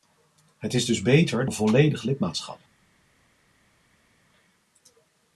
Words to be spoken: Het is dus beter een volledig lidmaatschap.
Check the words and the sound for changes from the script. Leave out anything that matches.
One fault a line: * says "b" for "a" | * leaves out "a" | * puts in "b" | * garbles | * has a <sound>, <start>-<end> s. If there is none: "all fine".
all fine